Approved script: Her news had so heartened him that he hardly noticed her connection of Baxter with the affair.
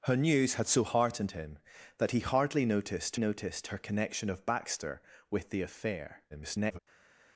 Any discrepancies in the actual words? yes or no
yes